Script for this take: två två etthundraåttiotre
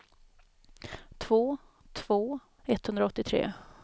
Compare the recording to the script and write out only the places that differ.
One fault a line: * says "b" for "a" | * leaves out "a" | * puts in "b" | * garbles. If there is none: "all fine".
all fine